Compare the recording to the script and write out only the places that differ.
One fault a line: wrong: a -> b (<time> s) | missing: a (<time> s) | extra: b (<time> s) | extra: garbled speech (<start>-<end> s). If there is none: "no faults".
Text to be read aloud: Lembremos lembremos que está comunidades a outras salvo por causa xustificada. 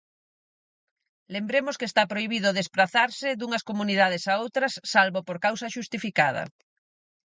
missing: lembremos (1.8 s)
extra: prohibido desprazarse dunhas (2.1 s)